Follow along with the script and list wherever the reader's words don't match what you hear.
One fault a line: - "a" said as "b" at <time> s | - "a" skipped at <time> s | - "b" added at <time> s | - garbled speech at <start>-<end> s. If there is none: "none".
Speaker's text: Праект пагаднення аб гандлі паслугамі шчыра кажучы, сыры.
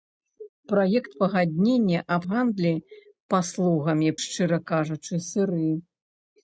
none